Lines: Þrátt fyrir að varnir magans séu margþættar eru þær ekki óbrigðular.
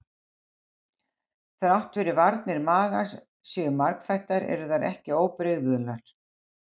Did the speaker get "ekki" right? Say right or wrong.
right